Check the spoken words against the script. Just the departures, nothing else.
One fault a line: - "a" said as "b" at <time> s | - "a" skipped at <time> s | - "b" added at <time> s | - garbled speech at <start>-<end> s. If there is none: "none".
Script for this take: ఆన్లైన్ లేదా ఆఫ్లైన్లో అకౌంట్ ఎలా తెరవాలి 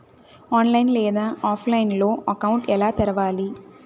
none